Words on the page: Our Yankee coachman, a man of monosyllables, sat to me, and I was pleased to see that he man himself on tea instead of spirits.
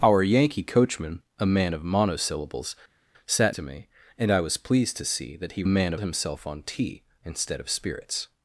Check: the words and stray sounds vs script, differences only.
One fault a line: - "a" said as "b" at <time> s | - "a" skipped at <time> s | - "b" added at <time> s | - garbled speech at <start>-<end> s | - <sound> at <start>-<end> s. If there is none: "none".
none